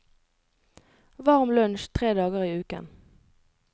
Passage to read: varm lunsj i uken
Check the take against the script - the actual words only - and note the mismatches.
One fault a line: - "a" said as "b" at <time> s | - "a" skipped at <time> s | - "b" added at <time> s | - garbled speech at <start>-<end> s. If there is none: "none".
- "tre dager" added at 2.0 s